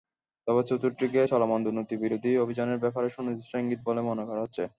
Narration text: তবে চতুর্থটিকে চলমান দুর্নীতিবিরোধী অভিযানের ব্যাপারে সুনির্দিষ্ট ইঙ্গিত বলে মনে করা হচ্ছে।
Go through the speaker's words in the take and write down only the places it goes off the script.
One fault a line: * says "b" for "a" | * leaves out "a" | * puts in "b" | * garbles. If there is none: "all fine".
all fine